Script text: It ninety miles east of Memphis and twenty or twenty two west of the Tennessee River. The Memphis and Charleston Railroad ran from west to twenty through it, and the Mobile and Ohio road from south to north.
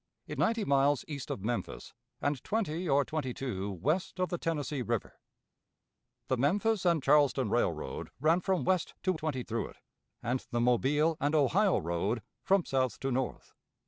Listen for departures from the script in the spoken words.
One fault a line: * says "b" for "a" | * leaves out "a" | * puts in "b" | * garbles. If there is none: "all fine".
all fine